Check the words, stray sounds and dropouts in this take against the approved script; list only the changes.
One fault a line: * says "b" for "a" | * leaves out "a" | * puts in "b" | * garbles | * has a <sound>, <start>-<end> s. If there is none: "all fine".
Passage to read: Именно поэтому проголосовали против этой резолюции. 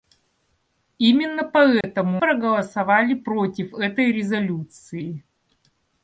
* has a dropout, 1.8-1.8 s